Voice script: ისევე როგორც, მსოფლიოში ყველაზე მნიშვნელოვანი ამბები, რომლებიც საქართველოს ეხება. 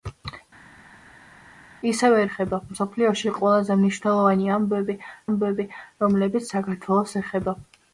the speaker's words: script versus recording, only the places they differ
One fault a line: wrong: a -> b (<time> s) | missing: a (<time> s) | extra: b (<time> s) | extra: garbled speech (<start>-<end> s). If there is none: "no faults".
wrong: როგორც -> ეხება (2.3 s)
extra: ამბები (5.3 s)